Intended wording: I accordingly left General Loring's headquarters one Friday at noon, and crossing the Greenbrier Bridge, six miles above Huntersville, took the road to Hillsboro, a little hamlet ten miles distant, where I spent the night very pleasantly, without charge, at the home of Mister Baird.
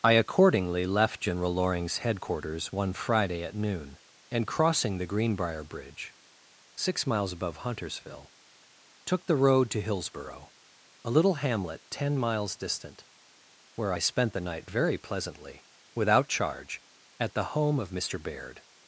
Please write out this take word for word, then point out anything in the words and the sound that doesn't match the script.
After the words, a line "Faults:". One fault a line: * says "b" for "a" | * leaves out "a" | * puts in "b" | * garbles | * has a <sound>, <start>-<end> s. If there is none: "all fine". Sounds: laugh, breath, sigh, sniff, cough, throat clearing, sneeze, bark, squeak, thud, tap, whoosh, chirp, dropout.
I accordingly left General Loring's headquarters one Friday at noon, and crossing the Greenbrier Bridge, six miles above Huntersville, took the road to Hillsboro, a little hamlet ten miles distant, where I spent the night very pleasantly, without charge, at the home of Mister Baird.
Faults:
all fine